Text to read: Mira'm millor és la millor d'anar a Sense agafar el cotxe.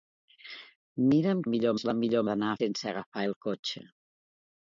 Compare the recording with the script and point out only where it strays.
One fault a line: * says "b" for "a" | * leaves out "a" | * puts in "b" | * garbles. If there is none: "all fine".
all fine